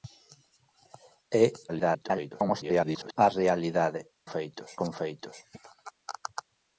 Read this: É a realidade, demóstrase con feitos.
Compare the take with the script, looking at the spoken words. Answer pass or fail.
fail